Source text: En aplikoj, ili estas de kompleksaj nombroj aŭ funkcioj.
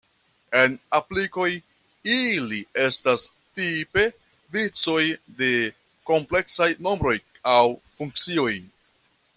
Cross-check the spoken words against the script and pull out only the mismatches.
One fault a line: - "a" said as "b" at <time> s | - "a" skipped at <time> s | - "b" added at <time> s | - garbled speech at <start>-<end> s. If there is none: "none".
- "tipe vicoj" added at 3.6 s